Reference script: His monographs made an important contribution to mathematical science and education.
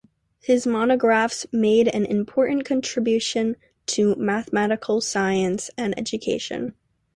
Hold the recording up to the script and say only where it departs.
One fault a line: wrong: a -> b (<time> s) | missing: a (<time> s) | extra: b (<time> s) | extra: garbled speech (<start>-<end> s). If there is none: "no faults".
no faults